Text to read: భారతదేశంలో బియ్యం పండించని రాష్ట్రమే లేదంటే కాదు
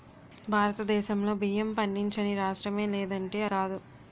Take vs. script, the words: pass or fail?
pass